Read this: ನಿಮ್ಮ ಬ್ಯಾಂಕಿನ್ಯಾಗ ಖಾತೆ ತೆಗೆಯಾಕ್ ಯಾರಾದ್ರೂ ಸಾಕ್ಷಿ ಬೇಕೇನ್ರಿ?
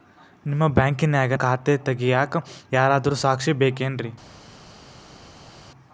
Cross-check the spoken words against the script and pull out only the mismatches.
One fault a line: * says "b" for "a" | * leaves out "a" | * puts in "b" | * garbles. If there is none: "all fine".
all fine